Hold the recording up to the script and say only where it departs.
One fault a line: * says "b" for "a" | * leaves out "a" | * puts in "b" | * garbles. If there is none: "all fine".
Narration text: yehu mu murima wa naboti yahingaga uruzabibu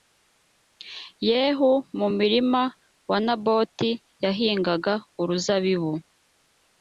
all fine